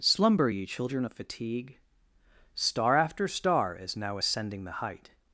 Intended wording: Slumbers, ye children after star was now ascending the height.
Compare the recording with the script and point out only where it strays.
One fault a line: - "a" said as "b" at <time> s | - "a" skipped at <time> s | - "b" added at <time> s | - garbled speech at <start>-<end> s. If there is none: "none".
- "Slumbers" said as "Slumber" at 0.0 s
- "of fatigue Star" added at 1.0 s
- "was" said as "is" at 3.7 s